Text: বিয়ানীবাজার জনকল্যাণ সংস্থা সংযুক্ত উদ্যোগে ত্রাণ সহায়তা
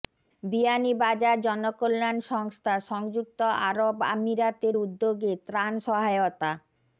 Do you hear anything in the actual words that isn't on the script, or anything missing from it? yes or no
yes